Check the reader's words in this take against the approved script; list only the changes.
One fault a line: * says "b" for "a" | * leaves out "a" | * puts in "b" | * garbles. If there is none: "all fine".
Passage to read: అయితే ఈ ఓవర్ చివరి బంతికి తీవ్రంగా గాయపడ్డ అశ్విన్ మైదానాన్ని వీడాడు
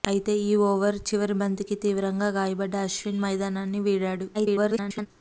* garbles